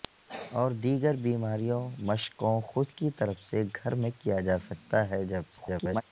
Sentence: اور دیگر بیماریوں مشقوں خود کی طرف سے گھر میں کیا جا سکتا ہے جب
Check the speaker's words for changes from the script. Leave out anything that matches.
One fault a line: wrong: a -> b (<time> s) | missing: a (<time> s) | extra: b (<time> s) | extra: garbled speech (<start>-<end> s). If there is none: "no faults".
extra: garbled speech (5.5-6.0 s)